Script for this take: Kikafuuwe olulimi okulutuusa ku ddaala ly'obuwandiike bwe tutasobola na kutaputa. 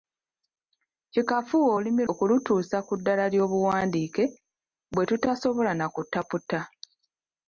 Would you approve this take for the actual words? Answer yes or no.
yes